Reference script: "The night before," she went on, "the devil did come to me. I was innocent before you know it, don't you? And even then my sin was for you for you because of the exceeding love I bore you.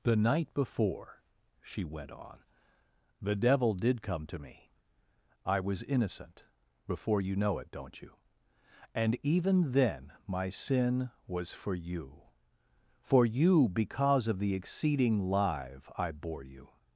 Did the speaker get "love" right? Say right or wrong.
wrong